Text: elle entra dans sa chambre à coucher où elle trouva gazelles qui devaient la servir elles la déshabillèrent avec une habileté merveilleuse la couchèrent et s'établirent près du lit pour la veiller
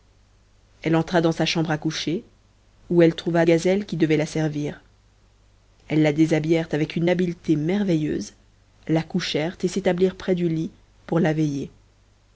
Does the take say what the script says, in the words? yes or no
yes